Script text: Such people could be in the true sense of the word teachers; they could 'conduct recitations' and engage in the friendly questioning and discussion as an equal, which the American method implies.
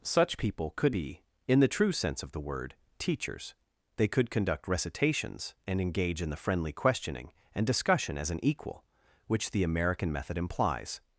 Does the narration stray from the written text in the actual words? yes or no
no